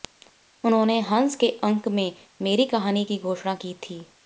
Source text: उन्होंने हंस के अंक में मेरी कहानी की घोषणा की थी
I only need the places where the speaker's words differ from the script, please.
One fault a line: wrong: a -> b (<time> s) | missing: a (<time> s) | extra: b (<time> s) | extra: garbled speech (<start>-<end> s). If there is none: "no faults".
no faults